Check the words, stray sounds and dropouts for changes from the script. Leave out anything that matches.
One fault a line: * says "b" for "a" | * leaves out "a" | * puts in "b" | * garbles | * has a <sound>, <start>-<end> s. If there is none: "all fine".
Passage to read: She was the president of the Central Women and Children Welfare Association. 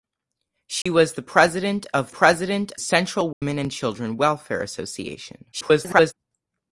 * has a dropout, 0.8-0.9 s
* says "president" for "the"
* has a dropout, 3.3-3.4 s
* garbles